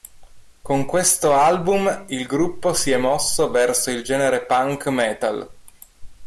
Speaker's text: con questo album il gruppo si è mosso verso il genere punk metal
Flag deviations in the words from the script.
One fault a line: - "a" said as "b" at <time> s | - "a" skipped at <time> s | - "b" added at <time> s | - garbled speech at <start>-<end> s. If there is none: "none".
none